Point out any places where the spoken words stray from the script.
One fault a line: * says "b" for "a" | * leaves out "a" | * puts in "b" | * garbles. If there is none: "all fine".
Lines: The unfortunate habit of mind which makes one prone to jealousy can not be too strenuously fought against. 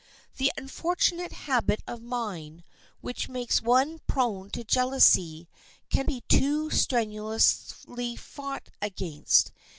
* leaves out "not"